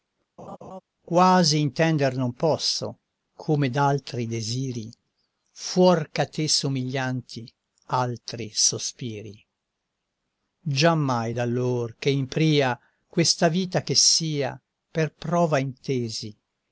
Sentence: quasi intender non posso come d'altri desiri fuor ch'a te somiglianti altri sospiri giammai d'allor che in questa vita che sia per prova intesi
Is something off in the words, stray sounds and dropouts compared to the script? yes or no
yes